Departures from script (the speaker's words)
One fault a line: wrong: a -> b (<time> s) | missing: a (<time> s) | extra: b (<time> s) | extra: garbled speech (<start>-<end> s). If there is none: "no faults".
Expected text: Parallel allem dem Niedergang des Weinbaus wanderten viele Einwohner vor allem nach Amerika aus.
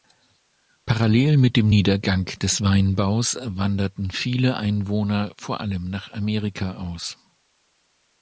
wrong: allem -> mit (1.4 s)